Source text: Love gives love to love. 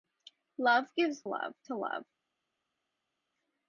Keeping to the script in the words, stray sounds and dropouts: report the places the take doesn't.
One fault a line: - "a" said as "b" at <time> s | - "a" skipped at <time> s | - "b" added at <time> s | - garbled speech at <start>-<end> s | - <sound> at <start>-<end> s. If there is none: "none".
none